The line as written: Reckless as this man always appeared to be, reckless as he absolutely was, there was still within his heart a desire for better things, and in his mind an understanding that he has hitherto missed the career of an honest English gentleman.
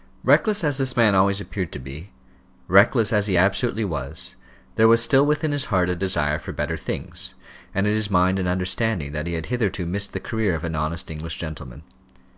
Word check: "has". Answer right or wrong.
wrong